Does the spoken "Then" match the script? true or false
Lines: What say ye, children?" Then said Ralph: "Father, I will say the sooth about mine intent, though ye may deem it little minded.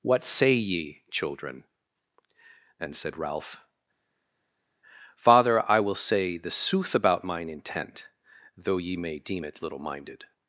false